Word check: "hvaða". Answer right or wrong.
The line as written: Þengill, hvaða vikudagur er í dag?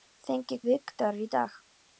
wrong